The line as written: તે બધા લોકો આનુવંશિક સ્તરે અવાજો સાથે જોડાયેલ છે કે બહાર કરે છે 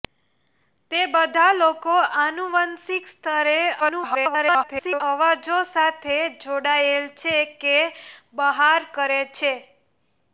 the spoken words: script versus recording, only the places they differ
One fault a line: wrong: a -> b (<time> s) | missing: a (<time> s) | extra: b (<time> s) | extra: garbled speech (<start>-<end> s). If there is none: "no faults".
extra: garbled speech (3.8-5.0 s)